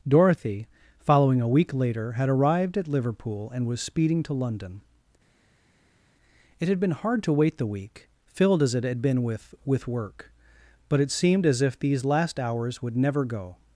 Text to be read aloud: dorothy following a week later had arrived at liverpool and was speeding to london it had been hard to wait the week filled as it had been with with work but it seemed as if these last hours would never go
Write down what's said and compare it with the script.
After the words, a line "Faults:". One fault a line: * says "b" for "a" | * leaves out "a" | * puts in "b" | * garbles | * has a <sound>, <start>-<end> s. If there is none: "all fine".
dorothy following a week later had arrived at liverpool and was speeding to london it had been hard to wait the week filled as it had been with with work but it seemed as if these last hours would never go
Faults:
all fine